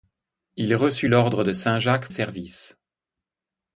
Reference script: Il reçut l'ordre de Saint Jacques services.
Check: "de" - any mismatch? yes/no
no